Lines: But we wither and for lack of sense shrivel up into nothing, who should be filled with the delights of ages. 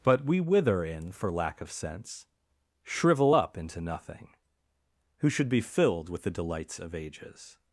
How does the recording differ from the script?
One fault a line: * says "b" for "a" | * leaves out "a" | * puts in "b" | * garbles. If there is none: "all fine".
* says "in" for "and"